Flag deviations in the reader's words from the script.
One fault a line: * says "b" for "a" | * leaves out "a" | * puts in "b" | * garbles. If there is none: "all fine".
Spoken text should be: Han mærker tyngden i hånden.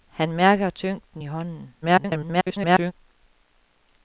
* garbles